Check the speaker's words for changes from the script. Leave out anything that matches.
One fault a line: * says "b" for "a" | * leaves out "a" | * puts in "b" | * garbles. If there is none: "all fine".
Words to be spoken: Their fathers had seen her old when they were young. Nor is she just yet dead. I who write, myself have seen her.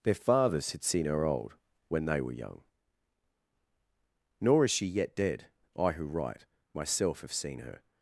* leaves out "just"